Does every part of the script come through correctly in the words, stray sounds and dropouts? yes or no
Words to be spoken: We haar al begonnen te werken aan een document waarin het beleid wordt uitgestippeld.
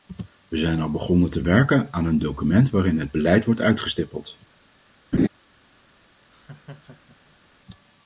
no